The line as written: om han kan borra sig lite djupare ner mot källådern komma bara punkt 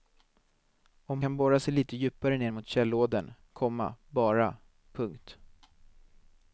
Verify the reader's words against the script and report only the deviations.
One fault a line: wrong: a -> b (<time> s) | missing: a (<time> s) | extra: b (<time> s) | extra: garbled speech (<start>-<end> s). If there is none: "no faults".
missing: han (1.2 s)